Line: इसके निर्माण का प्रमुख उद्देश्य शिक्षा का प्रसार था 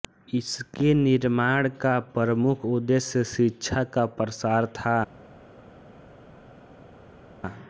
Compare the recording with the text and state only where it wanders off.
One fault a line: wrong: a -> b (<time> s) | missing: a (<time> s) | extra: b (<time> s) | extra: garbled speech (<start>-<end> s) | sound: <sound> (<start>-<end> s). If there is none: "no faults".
no faults